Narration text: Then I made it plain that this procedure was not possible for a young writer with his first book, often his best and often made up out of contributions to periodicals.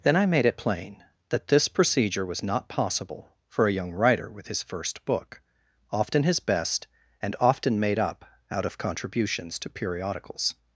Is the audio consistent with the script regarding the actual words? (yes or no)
yes